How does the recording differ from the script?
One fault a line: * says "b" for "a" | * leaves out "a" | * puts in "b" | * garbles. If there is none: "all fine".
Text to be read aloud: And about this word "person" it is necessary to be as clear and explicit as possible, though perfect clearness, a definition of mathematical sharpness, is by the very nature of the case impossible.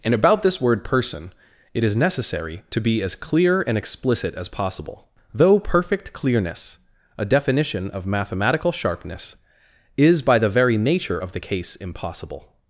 all fine